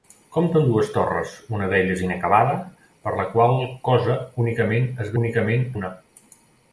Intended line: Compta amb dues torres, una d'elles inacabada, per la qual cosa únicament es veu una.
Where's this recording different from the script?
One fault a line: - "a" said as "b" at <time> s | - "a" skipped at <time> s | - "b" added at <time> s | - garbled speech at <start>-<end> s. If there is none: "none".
- "veu" said as "únicament" at 5.2 s